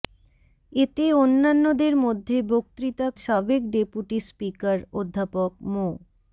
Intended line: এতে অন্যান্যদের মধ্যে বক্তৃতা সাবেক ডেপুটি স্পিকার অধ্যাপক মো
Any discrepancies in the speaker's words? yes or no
no